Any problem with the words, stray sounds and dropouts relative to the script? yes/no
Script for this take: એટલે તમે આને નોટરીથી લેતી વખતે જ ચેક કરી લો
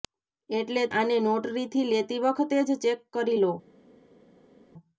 yes